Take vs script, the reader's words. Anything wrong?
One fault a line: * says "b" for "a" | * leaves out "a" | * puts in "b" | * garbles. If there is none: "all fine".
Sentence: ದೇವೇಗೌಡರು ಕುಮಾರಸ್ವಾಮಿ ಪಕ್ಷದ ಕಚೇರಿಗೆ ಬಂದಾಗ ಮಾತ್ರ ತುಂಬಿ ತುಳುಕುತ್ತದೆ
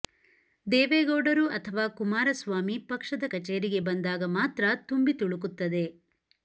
* puts in "ಅಥವಾ"